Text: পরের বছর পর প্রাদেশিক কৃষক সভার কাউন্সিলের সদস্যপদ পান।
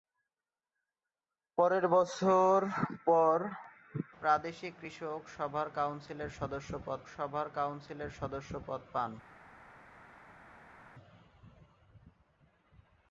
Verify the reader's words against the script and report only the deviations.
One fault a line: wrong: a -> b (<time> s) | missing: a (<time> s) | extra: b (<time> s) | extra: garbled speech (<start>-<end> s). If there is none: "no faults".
extra: সভার কাউন্সিলের সদস্যপদ (7.1 s)